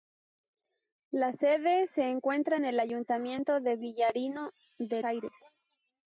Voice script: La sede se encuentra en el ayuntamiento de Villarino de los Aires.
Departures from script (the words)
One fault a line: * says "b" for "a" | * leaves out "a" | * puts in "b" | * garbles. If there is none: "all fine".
* leaves out "los"